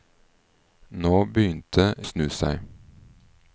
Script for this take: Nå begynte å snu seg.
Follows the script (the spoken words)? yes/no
yes